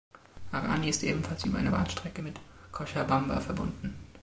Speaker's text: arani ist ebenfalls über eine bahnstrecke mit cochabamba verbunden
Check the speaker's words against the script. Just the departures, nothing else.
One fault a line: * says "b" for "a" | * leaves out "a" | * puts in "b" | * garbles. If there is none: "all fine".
all fine